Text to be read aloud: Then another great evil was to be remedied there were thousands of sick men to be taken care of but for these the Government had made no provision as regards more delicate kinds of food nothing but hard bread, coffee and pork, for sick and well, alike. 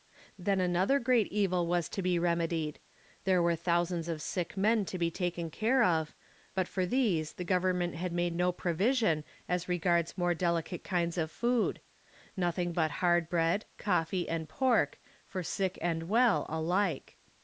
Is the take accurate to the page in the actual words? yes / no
yes